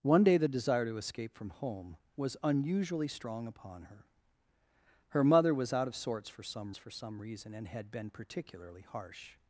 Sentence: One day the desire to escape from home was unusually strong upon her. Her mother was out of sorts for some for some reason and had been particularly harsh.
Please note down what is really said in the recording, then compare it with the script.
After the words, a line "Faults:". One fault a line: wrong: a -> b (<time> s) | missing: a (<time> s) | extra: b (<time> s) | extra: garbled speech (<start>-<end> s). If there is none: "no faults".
One day the desire to escape from home was unusually strong upon her. Her mother was out of sorts for some for some reason and had been particularly harsh.
Faults:
no faults